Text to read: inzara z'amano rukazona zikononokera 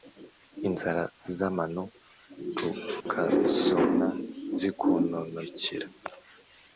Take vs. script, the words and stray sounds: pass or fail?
fail